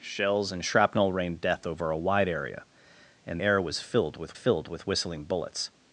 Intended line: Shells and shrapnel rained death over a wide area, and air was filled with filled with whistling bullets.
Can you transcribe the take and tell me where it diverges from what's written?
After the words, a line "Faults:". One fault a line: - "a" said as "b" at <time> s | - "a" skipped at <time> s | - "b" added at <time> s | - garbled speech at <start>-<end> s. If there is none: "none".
Shells and shrapnel rained death over a wide area, and air was filled with filled with whistling bullets.
Faults:
none